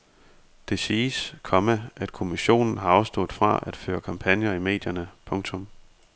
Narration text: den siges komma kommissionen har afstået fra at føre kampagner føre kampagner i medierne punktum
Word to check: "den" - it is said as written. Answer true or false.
false